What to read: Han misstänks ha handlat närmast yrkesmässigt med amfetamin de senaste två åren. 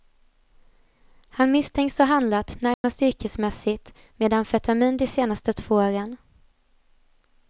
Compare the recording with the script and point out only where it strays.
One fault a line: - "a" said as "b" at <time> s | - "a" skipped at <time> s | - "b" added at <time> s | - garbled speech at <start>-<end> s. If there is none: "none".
none